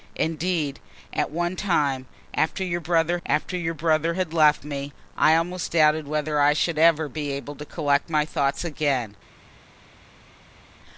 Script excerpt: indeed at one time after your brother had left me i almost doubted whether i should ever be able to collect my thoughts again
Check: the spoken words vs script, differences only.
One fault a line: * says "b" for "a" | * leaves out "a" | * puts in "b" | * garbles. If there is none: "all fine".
* puts in "after your brother"